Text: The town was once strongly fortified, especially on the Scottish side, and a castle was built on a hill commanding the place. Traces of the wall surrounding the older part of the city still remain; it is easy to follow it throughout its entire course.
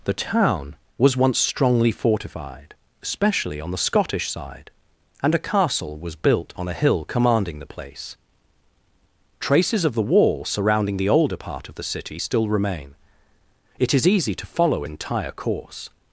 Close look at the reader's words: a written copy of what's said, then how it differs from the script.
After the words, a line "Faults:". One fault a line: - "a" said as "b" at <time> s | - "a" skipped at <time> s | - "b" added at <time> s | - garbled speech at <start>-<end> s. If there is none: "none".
The town was once strongly fortified, especially on the Scottish side, and a castle was built on a hill commanding the place. Traces of the wall surrounding the older part of the city still remain; it is easy to follow entire course.
Faults:
- "it throughout its" skipped at 14.9 s